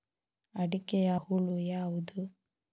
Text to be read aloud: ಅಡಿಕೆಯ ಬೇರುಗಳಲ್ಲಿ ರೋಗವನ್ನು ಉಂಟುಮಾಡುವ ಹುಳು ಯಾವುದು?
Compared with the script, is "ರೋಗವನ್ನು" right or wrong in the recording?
wrong